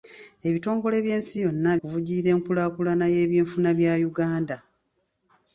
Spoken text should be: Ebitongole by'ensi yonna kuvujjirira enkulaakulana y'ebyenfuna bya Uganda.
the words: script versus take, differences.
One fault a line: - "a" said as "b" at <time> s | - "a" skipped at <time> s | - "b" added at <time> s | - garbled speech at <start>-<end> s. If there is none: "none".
none